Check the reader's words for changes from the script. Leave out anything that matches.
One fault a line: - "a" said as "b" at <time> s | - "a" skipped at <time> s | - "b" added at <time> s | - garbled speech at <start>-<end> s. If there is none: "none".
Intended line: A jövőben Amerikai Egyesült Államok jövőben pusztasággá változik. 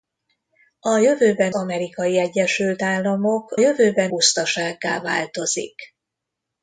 none